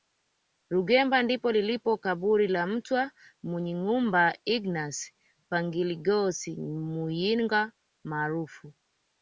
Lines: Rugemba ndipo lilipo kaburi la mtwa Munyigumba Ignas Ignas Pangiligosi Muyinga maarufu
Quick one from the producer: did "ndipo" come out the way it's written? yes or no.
yes